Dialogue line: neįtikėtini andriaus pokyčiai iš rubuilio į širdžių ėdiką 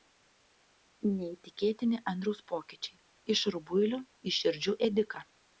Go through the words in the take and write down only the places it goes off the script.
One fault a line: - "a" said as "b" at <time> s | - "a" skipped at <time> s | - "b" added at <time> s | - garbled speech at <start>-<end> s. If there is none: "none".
none